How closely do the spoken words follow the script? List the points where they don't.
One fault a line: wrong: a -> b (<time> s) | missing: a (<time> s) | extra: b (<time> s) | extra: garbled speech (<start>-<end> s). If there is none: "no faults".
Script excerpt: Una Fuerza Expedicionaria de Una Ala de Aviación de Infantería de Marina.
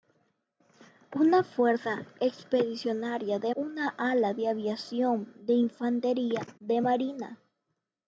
no faults